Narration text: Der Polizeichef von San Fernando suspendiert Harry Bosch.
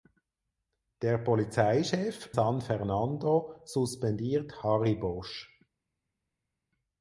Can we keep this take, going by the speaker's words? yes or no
no